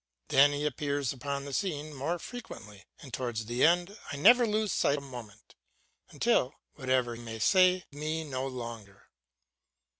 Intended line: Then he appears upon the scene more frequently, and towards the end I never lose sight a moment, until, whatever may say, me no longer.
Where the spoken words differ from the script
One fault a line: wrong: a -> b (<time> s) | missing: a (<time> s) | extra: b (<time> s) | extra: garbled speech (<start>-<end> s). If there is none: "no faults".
no faults